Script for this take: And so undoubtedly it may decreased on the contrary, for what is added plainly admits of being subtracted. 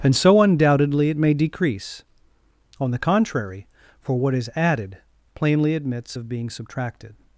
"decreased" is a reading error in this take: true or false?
true